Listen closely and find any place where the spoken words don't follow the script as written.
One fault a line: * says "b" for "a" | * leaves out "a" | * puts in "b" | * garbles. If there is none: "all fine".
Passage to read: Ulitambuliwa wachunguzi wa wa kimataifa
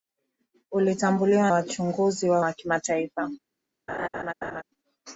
all fine